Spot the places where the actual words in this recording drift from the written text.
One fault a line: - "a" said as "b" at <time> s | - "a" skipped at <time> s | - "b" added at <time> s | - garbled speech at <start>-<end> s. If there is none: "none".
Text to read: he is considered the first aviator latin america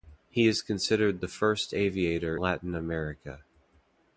none